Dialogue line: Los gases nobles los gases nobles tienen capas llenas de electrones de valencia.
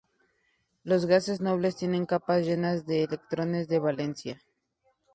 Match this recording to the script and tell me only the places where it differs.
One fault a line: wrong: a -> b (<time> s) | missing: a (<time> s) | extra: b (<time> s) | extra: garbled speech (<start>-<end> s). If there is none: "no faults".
missing: los gases nobles (1.8 s)